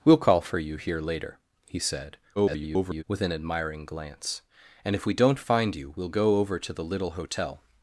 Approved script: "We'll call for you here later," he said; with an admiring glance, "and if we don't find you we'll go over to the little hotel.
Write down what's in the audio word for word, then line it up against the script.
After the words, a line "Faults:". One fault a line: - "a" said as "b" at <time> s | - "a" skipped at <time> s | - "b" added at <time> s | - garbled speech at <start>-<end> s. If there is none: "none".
"We'll call for you here later," he said; [garbled] with an admiring glance, "and if we don't find you we'll go over to the little hotel.
Faults:
- garbled speech at 2.4-3.0 s